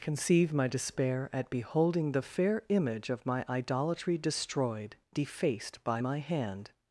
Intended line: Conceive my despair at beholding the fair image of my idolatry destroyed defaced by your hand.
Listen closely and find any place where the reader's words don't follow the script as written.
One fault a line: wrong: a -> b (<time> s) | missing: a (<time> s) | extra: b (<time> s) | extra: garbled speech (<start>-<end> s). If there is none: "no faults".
wrong: your -> my (6.0 s)